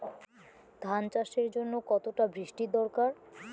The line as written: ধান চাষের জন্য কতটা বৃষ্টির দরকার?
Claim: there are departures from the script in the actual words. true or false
false